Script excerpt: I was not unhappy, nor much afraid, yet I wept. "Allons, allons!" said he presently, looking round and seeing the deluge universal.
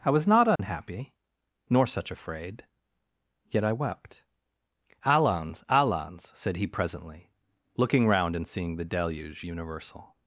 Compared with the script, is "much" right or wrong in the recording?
wrong